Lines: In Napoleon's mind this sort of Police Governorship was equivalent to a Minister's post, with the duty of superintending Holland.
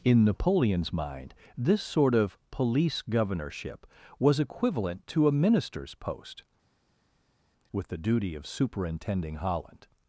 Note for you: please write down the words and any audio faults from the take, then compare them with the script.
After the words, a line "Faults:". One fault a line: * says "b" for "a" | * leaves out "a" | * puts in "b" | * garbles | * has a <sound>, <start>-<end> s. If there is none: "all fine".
In Napoleon's mind this sort of Police Governorship was equivalent to a Minister's post, with the duty of superintending Holland.
Faults:
all fine